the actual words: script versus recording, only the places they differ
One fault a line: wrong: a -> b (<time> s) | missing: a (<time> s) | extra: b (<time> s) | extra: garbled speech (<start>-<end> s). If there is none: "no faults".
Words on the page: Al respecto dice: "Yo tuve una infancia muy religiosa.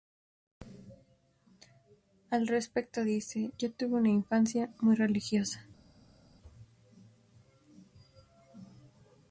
no faults